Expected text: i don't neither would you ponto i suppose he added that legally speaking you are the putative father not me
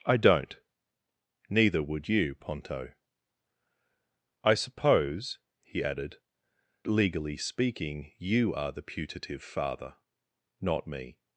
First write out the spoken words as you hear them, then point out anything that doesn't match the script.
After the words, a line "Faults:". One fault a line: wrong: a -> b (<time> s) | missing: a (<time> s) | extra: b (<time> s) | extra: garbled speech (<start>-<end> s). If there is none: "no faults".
i don't neither would you ponto i suppose he added legally speaking you are the putative father not me
Faults:
missing: that (6.2 s)